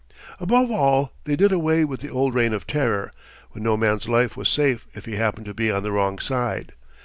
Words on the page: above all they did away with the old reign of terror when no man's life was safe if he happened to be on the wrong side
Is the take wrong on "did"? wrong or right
right